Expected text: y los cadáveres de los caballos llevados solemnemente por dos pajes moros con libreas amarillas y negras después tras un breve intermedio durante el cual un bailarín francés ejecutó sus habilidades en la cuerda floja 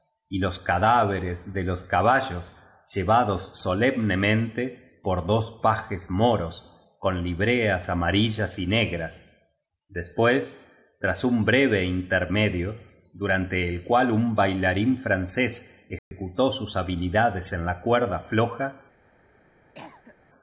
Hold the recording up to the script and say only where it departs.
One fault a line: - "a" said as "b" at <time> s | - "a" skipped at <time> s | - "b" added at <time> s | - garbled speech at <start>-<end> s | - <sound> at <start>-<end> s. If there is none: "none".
- dropout at 16.0-16.1 s
- cough at 19.7-20.2 s